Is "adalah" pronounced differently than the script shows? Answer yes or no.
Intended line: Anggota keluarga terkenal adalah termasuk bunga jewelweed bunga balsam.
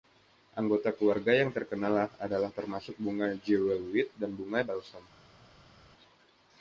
no